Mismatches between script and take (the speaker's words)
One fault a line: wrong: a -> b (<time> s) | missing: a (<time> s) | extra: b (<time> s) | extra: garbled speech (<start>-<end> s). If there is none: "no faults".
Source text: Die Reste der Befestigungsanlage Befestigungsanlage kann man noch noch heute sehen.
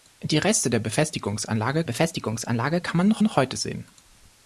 no faults